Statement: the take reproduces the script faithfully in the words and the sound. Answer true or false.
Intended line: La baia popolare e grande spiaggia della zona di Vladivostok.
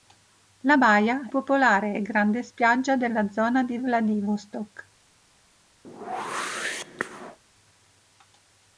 false